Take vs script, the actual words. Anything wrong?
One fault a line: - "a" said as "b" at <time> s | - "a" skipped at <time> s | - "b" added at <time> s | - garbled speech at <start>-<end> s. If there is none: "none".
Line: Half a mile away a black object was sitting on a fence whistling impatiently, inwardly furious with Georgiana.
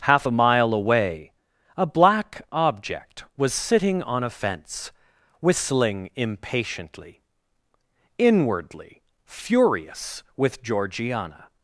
none